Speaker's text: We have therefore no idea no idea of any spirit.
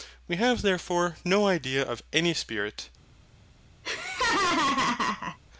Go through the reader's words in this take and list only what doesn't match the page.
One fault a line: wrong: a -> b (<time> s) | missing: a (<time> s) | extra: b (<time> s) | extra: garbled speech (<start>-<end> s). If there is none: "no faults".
missing: no idea (1.8 s)